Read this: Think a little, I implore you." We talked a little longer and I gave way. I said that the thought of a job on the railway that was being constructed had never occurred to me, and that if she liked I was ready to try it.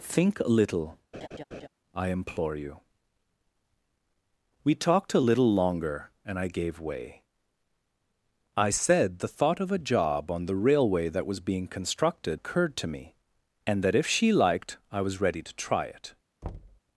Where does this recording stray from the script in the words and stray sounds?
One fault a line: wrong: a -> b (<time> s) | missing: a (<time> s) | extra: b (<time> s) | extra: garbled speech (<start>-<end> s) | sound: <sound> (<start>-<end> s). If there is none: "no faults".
sound: laugh (1.1-1.7 s)
missing: that (9.2 s)
missing: had never (12.4 s)
sound: thud (16.4-16.8 s)